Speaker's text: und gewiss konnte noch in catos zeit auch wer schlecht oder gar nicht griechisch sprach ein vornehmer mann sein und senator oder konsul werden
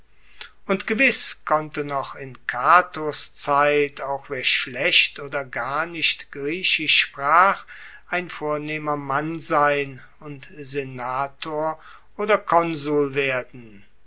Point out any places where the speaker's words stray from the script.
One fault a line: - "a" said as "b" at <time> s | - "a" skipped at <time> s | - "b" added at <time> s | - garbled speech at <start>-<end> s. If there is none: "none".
none